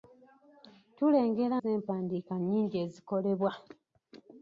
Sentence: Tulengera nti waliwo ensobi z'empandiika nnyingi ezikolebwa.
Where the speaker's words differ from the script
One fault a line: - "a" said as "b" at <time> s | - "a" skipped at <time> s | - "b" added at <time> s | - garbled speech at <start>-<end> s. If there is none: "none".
- "nti waliwo ensobi" skipped at 1.6 s